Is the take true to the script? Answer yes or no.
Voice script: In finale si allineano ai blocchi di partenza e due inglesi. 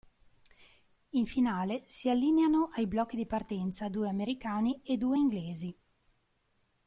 no